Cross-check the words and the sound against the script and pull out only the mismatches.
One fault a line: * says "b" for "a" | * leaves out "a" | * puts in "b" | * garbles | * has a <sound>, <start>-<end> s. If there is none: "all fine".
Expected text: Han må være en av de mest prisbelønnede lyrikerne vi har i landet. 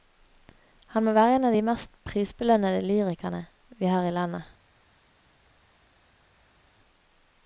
all fine